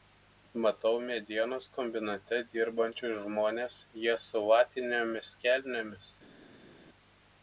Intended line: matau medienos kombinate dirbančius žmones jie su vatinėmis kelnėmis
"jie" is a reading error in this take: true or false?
false